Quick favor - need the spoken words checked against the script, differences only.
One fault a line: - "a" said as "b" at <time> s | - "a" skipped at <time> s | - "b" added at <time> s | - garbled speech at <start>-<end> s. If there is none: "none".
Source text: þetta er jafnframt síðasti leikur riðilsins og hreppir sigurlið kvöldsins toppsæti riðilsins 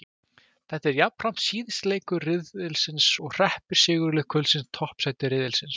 none